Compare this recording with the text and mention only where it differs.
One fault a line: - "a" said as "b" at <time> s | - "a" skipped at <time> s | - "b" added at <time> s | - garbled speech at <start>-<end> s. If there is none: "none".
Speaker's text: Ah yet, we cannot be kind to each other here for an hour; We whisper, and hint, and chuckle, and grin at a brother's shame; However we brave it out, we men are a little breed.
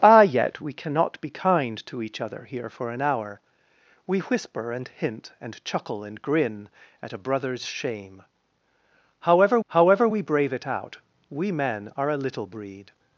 - "However" added at 9.7 s